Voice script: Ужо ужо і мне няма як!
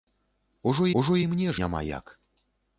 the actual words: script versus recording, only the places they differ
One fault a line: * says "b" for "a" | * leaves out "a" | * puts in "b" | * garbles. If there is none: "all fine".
all fine